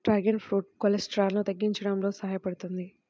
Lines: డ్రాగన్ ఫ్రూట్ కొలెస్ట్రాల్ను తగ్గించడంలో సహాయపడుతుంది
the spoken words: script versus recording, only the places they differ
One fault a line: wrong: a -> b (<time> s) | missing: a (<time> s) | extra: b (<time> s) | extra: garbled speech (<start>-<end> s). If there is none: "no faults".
no faults